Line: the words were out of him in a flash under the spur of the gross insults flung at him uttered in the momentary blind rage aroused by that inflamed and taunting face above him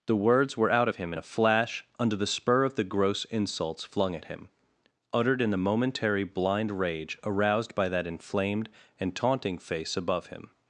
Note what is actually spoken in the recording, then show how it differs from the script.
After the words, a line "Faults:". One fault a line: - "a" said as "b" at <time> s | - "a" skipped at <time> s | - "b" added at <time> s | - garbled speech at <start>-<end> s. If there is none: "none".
the words were out of him in a flash under the spur of the gross insults flung at him uttered in the momentary blind rage aroused by that inflamed and taunting face above him
Faults:
none